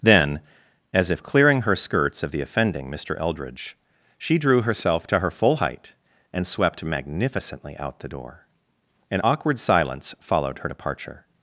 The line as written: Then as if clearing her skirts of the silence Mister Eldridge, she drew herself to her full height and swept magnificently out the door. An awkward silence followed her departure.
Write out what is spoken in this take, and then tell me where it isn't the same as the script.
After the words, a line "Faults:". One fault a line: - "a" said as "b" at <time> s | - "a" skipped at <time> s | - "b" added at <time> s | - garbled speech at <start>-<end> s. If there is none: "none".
Then as if clearing her skirts of the offending Mister Eldridge, she drew herself to her full height and swept magnificently out the door. An awkward silence followed her departure.
Faults:
- "silence" said as "offending" at 2.4 s